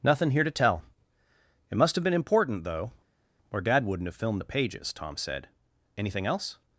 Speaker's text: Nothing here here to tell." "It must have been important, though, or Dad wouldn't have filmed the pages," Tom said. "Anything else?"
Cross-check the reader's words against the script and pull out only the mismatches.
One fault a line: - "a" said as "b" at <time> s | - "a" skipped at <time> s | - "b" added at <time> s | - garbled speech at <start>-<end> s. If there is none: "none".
- "here" skipped at 0.4 s